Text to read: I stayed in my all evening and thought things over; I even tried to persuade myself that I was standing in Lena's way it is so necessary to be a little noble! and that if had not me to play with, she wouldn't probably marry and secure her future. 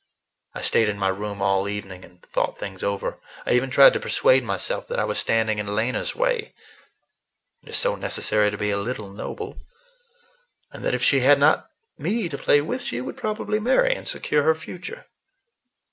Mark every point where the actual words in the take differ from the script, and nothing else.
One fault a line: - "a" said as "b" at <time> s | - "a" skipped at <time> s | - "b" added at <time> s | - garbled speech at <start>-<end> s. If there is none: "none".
- "room" added at 1.1 s
- "she" added at 11.0 s
- "wouldn't" said as "would" at 13.0 s